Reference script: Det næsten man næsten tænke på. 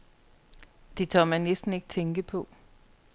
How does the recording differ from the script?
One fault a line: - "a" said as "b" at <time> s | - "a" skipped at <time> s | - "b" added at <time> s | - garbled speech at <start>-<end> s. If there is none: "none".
- "næsten" said as "tør" at 1.1 s
- "ikke" added at 1.7 s